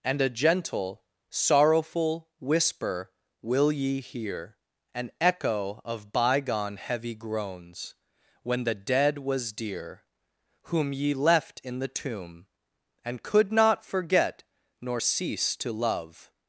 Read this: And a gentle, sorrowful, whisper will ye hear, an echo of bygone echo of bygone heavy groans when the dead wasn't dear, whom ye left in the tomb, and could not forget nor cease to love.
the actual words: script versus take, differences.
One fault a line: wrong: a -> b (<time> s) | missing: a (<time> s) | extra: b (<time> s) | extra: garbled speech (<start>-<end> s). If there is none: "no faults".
missing: echo of bygone (6.8 s)
wrong: wasn't -> was (9.2 s)